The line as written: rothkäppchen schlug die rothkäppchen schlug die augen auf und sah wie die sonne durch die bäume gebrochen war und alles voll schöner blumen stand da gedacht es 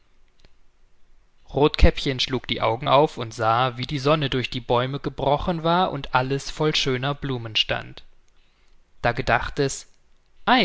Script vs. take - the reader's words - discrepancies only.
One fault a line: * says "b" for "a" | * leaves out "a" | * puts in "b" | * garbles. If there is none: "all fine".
* leaves out "rothkäppchen schlug die"